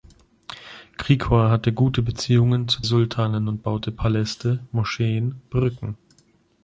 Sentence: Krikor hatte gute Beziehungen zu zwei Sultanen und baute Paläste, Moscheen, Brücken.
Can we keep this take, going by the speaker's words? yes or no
no